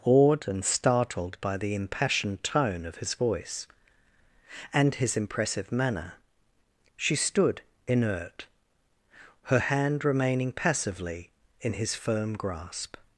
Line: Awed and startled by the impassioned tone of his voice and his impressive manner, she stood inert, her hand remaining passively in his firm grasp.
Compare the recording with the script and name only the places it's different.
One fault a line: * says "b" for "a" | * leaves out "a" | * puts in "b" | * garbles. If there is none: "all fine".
all fine